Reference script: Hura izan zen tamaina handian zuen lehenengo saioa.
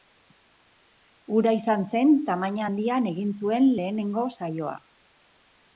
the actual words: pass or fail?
fail